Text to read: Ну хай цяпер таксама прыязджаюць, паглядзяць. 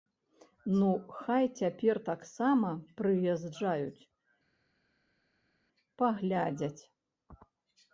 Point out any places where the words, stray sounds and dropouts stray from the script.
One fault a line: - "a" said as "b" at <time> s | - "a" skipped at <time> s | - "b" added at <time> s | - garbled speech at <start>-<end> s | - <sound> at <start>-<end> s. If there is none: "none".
none